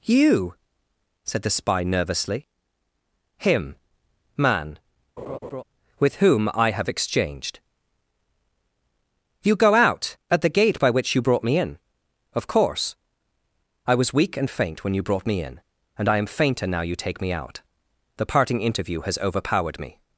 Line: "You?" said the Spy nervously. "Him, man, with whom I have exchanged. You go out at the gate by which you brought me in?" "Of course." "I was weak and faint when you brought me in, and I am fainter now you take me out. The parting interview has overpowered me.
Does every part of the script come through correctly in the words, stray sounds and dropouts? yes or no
no